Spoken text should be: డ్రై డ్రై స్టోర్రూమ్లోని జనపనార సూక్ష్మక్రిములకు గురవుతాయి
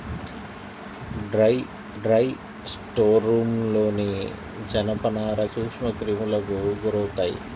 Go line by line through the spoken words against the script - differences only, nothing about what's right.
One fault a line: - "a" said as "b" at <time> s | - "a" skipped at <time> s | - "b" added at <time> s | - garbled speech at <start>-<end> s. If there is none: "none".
none